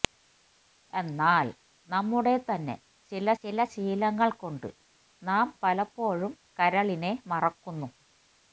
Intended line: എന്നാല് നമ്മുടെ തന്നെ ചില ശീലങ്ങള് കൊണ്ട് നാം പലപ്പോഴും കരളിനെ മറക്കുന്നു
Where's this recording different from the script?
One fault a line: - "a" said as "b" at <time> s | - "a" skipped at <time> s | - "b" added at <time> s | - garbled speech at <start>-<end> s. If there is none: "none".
- "ചില" added at 3.4 s